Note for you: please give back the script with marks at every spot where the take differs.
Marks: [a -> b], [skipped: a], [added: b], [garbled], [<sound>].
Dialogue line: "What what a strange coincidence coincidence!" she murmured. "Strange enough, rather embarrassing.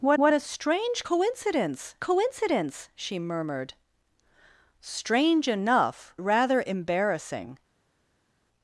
"What what a strange coincidence coincidence!" she murmured. "Strange enough, rather embarrassing.